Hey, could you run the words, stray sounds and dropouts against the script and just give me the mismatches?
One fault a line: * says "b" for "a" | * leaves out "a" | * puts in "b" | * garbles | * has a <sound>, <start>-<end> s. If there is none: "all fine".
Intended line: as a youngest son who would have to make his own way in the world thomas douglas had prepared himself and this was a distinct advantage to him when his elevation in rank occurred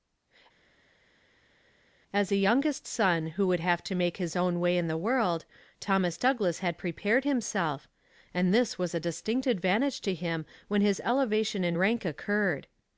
all fine